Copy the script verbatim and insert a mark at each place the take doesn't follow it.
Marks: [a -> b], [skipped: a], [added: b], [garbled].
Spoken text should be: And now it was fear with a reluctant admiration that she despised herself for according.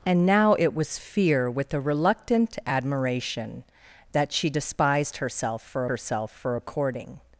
And now it was fear with a reluctant admiration that she despised herself for [added: herself for] according.